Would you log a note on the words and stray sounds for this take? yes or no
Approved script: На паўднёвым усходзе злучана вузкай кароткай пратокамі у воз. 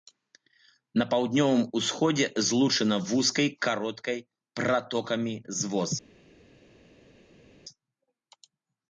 yes